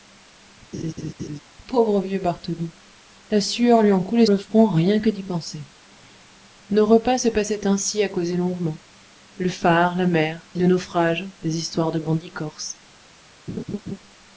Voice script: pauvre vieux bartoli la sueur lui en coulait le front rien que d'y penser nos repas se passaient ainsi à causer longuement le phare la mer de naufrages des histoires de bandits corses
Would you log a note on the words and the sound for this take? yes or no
yes